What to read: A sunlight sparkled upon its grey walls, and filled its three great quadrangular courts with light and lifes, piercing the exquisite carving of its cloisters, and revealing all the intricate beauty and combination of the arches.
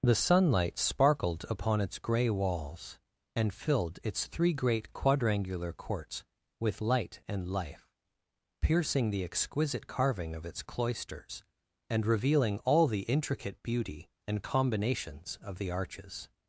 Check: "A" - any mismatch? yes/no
yes